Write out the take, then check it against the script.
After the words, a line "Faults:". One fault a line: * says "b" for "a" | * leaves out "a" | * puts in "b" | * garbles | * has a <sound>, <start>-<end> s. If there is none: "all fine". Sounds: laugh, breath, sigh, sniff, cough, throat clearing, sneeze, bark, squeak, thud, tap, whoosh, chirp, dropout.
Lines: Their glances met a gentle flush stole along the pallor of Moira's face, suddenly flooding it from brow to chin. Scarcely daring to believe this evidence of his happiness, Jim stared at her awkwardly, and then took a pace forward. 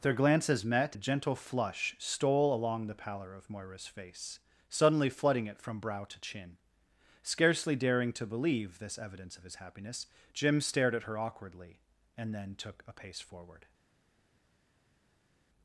Their glances met a gentle flush stole along the pallor of Moira's face, suddenly flooding it from brow to chin. Scarcely daring to believe this evidence of his happiness, Jim stared at her awkwardly, and then took a pace forward.
Faults:
all fine